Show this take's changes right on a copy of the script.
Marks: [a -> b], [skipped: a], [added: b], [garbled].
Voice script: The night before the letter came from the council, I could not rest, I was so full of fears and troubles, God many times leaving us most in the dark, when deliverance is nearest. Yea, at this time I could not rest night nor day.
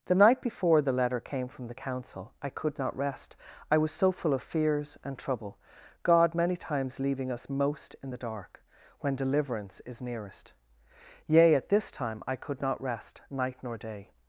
The night before the letter came from the council, I could not rest, I was so full of fears and [troubles, -> trouble] God many times leaving us most in the dark, when deliverance is nearest. Yea, at this time I could not rest night nor day.